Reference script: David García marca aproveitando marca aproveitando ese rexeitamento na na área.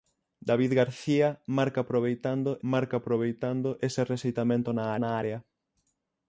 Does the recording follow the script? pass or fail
pass